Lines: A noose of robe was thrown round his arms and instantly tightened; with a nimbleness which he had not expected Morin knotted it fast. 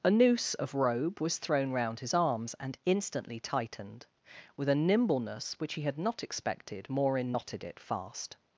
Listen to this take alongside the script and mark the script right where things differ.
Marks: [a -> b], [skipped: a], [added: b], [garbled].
A noose of robe was thrown round his arms and instantly tightened; with a nimbleness which he had not expected Morin knotted it fast.